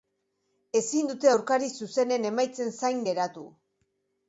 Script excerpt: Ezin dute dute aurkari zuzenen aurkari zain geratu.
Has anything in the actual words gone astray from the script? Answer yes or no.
yes